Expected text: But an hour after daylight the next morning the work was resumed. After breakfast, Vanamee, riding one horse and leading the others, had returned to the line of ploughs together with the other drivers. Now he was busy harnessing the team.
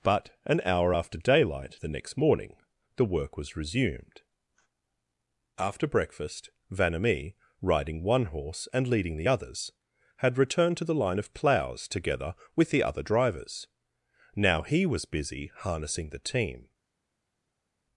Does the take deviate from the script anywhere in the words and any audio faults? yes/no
no